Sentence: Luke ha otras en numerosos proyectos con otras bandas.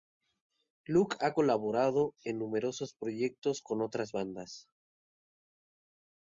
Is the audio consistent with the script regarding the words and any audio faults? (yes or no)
no